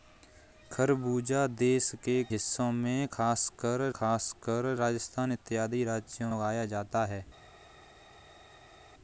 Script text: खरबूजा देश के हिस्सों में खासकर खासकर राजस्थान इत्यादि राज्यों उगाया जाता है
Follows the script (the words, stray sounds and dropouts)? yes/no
yes